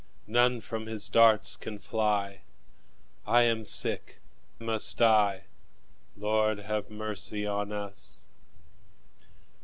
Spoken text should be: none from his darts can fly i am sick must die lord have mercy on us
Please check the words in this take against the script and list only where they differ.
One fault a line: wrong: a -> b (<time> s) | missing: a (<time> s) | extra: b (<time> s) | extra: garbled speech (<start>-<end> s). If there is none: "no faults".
no faults